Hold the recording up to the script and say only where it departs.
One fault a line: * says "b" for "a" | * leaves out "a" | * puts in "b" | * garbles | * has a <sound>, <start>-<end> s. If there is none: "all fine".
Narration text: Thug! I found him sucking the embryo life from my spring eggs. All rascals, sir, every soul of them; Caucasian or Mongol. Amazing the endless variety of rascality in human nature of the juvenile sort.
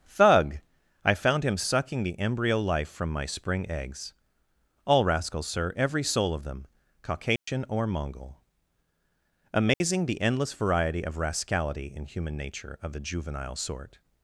* has a dropout, 7.4-7.5 s
* has a dropout, 9.7-9.8 s